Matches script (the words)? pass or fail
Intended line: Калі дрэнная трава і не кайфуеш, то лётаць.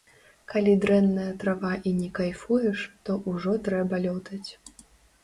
fail